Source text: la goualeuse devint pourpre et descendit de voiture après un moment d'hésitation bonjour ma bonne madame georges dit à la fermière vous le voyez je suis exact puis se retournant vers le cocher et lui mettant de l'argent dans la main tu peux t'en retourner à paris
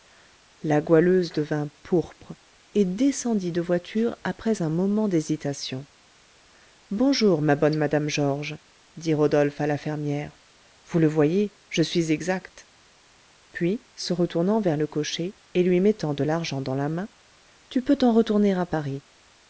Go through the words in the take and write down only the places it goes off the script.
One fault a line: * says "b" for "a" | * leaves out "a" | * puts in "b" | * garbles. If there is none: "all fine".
* puts in "rodolphe"